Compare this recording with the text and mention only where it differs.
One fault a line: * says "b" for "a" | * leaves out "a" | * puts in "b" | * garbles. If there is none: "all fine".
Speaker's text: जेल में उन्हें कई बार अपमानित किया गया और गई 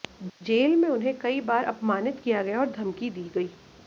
* puts in "धमकी दी"